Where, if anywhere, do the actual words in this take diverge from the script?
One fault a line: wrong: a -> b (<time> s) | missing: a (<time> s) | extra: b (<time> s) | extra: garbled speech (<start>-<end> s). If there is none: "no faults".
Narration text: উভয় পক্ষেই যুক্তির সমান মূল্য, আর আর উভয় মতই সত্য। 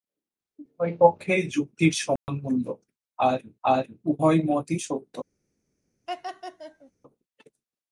no faults